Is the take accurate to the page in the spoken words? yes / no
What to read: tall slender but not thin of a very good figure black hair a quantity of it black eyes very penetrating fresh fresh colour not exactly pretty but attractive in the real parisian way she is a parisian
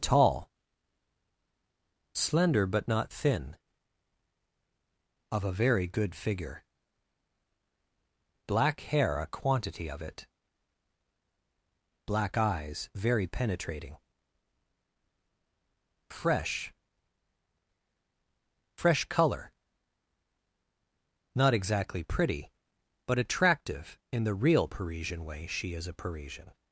yes